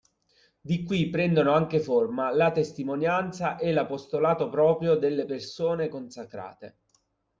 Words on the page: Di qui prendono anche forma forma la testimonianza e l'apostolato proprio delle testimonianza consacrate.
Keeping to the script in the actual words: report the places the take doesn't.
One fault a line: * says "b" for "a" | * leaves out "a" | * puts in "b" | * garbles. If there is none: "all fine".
* leaves out "forma"
* says "persone" for "testimonianza"